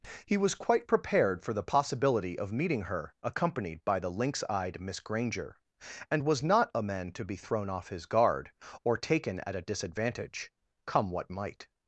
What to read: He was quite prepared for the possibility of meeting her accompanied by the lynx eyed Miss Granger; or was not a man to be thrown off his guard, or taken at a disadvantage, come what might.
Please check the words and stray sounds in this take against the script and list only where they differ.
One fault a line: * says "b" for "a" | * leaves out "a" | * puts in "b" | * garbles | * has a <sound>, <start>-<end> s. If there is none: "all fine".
* says "and" for "or"